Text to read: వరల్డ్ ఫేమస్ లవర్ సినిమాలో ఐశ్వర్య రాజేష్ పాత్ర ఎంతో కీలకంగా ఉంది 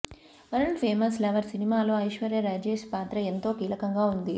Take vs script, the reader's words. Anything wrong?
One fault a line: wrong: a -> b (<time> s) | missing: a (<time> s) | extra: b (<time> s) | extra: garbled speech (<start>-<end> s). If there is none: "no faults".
no faults